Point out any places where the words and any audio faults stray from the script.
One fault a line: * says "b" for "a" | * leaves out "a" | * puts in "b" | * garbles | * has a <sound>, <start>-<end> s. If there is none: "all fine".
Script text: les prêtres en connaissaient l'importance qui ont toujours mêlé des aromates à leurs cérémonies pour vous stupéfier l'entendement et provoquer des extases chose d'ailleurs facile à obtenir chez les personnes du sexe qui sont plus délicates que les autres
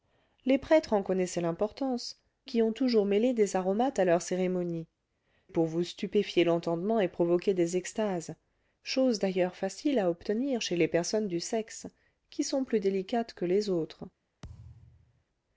* has a thud, 14.4-15.2 s